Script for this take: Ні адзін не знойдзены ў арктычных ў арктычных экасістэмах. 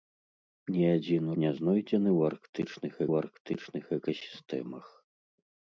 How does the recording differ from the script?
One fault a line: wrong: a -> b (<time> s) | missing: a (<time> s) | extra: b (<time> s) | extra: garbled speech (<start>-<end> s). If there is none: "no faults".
no faults